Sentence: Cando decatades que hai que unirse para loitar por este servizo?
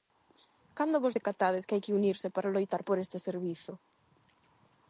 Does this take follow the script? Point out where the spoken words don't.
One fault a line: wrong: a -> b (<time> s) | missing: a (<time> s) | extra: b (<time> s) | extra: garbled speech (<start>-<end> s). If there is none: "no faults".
extra: vos (1.0 s)